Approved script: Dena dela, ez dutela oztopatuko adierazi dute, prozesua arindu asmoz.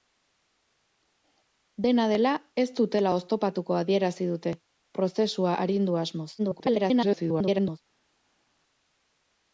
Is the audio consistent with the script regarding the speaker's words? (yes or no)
no